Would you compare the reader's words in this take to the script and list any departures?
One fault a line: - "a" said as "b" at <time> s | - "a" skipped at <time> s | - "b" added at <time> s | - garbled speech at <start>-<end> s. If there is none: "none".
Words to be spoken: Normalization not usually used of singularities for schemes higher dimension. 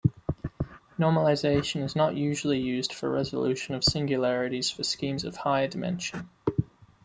- "is" added at 1.8 s
- "for resolution" added at 2.9 s
- "of" added at 5.2 s